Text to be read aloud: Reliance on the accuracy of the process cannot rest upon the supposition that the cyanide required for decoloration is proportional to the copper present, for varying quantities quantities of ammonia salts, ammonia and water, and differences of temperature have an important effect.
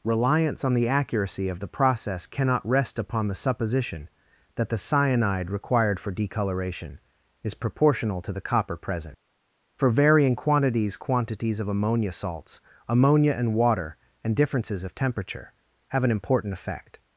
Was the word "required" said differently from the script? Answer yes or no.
no